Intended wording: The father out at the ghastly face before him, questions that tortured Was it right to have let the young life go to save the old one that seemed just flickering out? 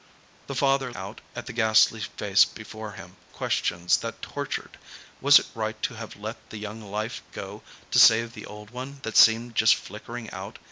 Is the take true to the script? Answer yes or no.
yes